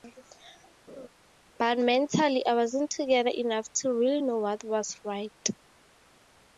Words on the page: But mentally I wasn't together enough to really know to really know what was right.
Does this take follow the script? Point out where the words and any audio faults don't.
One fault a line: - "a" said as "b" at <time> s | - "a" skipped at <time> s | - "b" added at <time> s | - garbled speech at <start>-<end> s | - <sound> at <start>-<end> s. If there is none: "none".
- laugh at 0.9-1.1 s
- "to really know" skipped at 4.4 s